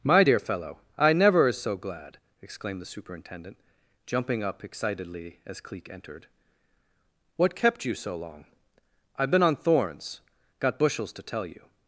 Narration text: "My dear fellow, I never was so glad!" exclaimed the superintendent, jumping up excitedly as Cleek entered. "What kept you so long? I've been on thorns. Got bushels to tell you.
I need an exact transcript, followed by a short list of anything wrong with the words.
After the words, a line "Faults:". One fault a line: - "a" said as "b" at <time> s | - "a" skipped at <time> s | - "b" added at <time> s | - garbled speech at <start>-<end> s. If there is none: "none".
"My dear fellow, I never is so glad!" exclaimed the superintendent, jumping up excitedly as Cleek entered. "What kept you so long? I've been on thorns. Got bushels to tell you.
Faults:
- "was" said as "is" at 1.5 s